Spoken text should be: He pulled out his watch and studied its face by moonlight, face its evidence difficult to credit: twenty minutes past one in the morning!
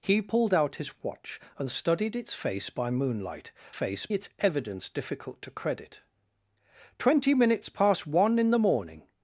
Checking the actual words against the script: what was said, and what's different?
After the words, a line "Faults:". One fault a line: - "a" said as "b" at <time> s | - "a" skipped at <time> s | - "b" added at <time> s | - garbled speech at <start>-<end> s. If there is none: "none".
He pulled out his watch and studied its face by moonlight, face its evidence difficult to credit: twenty minutes past one in the morning!
Faults:
none